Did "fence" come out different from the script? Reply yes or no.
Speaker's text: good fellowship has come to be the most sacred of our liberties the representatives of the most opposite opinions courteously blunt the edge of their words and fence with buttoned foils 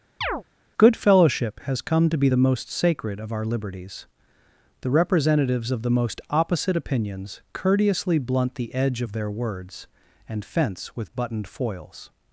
no